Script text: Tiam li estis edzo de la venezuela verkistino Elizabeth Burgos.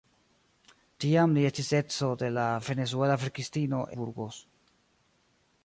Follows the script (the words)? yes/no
no